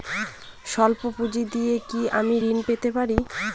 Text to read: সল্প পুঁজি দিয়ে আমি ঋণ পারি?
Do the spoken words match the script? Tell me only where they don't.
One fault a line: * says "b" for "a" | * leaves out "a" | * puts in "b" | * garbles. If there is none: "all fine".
* puts in "কি"
* puts in "পেতে"